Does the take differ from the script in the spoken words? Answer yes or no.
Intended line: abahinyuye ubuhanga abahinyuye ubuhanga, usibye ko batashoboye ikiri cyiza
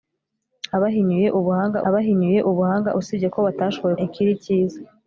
no